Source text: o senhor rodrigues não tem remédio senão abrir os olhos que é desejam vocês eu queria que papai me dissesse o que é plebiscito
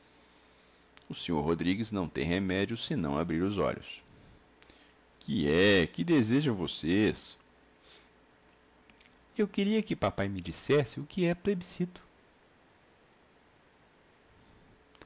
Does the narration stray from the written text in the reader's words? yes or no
yes